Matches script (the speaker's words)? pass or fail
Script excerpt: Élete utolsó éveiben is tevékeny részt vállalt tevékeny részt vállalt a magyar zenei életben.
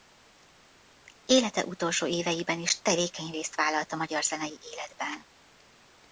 fail